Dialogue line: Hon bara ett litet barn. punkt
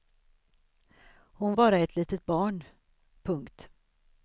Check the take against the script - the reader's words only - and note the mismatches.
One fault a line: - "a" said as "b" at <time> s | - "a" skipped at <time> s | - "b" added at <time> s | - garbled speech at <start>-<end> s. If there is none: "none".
none